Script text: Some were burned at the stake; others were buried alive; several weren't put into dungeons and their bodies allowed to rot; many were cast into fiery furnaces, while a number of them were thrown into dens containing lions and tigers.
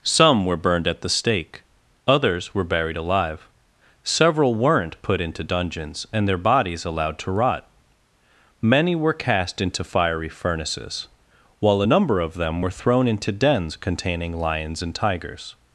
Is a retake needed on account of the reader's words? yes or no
no